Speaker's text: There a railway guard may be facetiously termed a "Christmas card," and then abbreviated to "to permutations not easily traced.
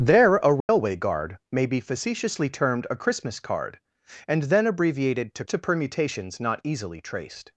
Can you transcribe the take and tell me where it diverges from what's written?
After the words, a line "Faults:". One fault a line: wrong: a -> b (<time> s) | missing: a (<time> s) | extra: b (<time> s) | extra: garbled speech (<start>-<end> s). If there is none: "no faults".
There a railway guard may be facetiously termed a "Christmas card," and then abbreviated to "to permutations not easily traced.
Faults:
no faults